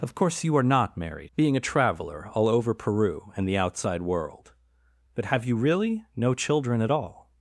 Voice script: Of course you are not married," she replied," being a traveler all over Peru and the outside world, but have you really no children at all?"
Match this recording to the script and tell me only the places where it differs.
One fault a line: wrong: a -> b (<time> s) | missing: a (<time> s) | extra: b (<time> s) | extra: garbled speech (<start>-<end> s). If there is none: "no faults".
missing: she replied (1.3 s)